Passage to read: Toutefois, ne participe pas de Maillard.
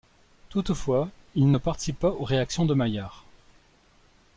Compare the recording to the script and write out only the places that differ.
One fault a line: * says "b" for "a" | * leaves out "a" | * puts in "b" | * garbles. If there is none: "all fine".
* puts in "il"
* puts in "aux réactions"